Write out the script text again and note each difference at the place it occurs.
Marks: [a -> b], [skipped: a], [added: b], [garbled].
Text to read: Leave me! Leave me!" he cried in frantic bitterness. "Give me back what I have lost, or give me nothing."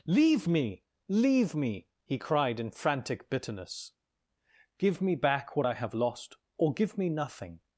Leave me! Leave me!" he cried in frantic bitterness. "Give me back what I have lost, or give me nothing."